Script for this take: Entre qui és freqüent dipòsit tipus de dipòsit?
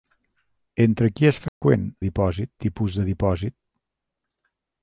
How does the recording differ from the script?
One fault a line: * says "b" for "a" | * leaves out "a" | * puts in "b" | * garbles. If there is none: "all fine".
all fine